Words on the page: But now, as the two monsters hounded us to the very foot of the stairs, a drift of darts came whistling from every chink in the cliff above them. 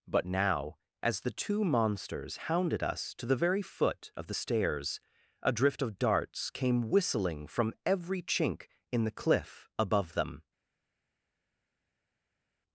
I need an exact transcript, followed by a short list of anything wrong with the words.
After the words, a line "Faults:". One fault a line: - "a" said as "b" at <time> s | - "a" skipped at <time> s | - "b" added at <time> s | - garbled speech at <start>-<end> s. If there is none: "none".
But now, as the two monsters hounded us to the very foot of the stairs, a drift of darts came whistling from every chink in the cliff above them.
Faults:
none